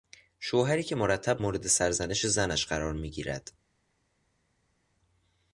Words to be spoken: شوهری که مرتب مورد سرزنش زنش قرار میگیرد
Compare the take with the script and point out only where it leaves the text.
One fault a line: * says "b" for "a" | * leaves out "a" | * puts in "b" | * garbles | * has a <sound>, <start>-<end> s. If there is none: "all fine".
all fine